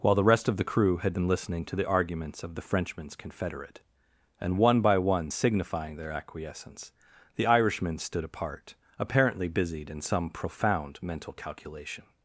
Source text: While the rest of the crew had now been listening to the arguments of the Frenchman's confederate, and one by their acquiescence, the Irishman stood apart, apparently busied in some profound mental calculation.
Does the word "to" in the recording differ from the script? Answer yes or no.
no